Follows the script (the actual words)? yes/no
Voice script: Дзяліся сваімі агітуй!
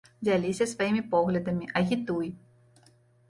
no